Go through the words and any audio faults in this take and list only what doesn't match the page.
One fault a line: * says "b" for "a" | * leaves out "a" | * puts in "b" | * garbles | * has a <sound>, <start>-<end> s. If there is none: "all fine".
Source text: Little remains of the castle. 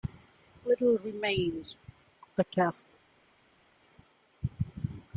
all fine